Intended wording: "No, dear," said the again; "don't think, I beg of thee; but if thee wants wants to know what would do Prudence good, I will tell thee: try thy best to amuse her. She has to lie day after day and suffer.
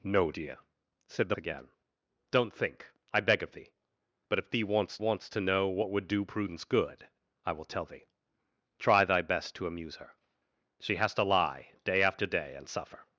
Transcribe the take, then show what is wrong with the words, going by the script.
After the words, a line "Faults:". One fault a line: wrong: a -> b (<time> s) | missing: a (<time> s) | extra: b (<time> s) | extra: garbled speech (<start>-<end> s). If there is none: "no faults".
"No, dear," said the again; "don't think, I beg of thee; but if thee wants wants to know what would do Prudence good, I will tell thee: try thy best to amuse her. She has to lie day after day and suffer.
Faults:
no faults